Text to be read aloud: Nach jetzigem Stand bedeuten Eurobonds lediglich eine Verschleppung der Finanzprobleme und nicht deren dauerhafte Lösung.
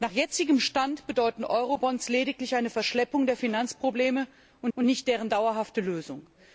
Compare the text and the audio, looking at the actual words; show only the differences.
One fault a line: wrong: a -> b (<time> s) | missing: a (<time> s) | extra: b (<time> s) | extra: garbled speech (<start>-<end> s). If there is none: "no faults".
extra: und (4.7 s)